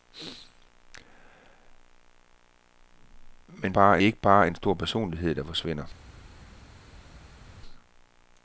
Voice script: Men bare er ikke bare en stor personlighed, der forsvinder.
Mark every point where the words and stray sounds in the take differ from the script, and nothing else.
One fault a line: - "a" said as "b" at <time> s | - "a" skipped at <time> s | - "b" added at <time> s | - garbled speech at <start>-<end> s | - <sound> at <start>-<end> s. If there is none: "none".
none